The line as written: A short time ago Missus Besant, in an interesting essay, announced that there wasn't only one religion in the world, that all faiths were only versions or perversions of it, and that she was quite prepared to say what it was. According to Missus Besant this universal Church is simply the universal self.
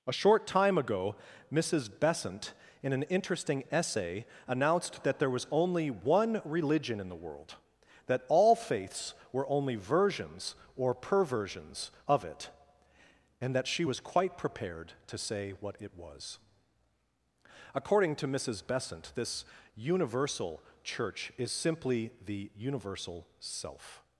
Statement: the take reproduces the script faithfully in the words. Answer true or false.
false